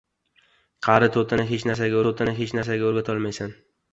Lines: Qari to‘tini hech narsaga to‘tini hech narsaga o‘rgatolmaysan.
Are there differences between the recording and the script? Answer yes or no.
no